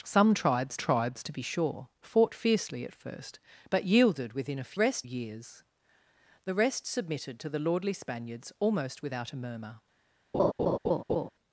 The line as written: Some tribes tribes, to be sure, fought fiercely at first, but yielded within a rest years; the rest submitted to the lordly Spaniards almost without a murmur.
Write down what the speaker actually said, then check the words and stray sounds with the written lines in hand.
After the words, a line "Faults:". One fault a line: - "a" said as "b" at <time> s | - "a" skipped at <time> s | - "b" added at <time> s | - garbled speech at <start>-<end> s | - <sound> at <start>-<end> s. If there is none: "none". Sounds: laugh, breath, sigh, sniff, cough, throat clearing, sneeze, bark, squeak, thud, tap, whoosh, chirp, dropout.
Some tribes tribes, to be sure, fought fiercely at first, but yielded within a rest years; the rest submitted to the lordly Spaniards almost without a murmur.
Faults:
- laugh at 10.3-11.3 s